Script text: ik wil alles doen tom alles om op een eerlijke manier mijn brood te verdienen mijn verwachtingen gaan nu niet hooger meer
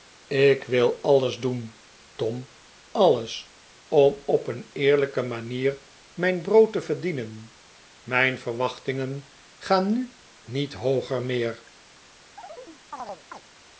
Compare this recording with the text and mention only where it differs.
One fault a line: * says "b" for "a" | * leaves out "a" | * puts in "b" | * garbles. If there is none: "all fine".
all fine